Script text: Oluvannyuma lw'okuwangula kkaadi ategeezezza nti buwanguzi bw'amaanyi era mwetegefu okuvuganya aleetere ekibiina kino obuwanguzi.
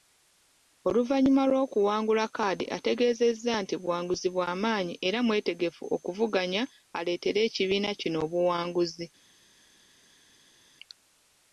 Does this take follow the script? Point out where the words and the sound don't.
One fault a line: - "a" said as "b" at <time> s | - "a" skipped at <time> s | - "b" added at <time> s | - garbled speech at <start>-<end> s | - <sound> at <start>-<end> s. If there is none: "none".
none